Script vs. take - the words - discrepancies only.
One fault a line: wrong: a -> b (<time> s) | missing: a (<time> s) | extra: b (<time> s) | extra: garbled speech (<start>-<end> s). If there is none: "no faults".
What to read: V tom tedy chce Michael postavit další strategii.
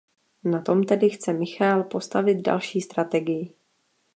wrong: V -> Na (0.4 s)